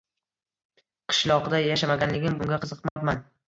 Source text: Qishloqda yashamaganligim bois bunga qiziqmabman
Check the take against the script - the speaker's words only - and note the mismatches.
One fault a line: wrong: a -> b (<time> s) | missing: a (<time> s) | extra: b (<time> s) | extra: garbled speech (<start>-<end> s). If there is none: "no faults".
missing: bois (2.4 s)